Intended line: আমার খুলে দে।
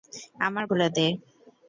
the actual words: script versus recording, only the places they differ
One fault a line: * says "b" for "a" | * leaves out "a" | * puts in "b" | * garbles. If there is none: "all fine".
all fine